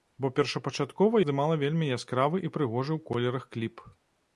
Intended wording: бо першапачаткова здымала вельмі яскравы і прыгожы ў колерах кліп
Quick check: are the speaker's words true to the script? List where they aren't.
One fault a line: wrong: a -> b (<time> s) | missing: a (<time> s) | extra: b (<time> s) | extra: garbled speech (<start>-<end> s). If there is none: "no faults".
no faults